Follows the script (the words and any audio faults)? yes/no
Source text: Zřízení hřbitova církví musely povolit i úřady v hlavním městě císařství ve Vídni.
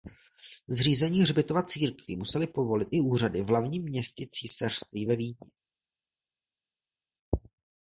yes